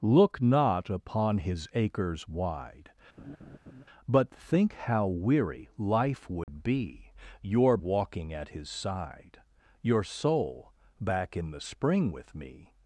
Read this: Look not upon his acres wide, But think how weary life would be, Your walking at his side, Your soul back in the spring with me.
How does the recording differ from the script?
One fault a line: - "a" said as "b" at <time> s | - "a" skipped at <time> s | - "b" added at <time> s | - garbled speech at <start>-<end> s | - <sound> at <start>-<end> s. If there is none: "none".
- laugh at 3.2-3.8 s
- dropout at 6.4-6.5 s